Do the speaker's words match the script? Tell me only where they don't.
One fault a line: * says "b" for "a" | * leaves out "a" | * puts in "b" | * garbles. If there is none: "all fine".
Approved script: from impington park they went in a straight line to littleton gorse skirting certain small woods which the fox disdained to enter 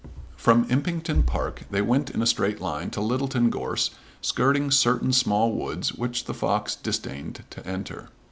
all fine